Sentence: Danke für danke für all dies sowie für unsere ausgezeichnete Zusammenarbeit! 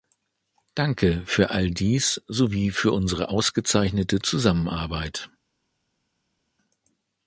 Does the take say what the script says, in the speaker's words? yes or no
no